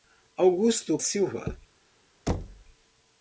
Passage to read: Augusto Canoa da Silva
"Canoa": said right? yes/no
no